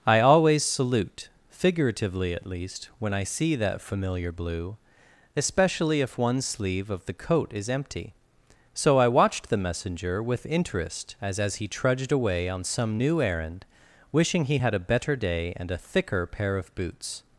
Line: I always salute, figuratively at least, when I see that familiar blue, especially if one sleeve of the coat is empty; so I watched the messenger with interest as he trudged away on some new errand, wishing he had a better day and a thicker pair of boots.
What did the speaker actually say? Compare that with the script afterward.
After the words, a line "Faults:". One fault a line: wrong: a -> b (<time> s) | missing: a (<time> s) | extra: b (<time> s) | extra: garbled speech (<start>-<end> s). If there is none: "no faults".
I always salute, figuratively at least, when I see that familiar blue, especially if one sleeve of the coat is empty; so I watched the messenger with interest as as he trudged away on some new errand, wishing he had a better day and a thicker pair of boots.
Faults:
extra: as (11.4 s)